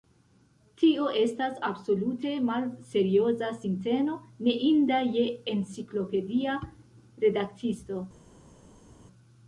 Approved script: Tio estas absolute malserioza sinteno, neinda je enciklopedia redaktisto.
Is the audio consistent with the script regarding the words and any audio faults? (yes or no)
yes